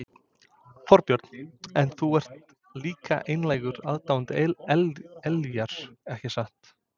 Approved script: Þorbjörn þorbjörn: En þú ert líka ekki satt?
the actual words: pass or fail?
fail